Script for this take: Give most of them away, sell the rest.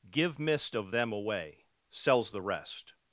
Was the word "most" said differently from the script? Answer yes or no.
yes